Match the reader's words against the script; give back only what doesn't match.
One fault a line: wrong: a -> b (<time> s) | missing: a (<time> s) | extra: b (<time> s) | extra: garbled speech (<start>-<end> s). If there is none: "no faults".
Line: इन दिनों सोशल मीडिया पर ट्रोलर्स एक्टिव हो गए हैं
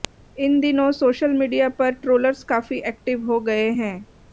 extra: काफी (2.5 s)